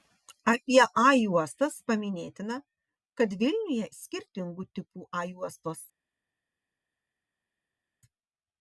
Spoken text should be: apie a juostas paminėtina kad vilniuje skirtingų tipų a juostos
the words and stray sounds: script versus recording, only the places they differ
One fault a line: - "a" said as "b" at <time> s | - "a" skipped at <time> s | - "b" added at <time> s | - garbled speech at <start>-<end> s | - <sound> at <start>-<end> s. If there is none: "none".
none